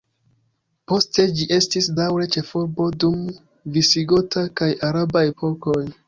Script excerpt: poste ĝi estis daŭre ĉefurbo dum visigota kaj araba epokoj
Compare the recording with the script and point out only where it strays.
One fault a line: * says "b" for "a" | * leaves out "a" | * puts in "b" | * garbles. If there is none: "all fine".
all fine